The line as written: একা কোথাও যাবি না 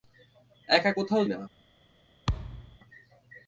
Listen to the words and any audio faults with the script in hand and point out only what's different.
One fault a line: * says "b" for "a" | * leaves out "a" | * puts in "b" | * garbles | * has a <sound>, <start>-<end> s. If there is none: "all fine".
* leaves out "যাবি"
* has a thud, 2.3-2.8 s